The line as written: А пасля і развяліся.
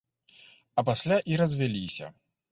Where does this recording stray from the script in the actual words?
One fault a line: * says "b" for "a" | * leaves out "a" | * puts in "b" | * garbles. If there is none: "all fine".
all fine